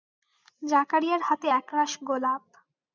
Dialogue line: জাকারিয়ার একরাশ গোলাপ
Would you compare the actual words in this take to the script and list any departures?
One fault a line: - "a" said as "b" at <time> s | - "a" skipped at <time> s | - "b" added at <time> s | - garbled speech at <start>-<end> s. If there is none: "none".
- "হাতে" added at 1.3 s